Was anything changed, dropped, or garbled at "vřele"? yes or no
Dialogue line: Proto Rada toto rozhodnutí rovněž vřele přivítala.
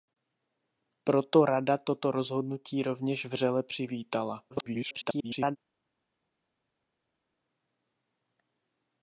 no